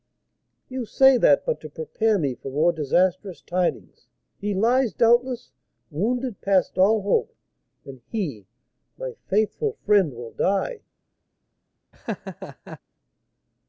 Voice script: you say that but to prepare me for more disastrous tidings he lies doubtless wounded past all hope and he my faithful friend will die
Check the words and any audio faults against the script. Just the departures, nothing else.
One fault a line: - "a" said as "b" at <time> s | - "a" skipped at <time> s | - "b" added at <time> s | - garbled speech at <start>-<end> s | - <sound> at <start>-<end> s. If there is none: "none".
- laugh at 11.9-12.8 s